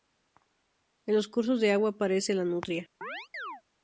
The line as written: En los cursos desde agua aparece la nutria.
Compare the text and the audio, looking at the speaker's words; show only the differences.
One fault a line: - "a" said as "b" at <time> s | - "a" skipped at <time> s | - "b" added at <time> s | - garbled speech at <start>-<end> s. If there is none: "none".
- "desde" said as "de" at 1.6 s